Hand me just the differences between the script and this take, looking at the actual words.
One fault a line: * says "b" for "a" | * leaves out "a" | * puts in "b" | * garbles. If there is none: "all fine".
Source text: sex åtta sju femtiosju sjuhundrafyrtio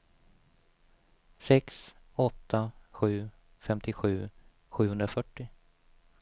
all fine